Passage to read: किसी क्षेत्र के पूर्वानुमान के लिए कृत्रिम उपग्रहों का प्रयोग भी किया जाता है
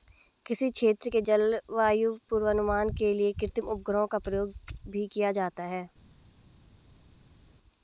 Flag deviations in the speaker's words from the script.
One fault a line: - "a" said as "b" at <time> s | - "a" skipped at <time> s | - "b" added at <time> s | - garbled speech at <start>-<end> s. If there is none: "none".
- "जलवायु" added at 1.2 s